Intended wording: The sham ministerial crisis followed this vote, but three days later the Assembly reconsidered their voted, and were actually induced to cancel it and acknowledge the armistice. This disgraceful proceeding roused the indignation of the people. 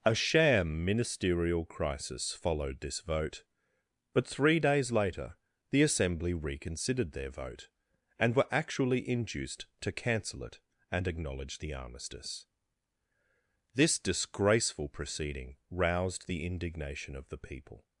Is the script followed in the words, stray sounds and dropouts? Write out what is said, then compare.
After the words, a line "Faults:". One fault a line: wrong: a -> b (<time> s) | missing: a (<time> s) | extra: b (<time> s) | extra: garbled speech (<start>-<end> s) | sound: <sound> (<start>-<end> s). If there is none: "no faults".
A sham ministerial crisis followed this vote, but three days later the Assembly reconsidered their vote, and were actually induced to cancel it and acknowledge the armistice. This disgraceful proceeding roused the indignation of the people.
Faults:
wrong: The -> A (0.0 s)
wrong: voted -> vote (7.3 s)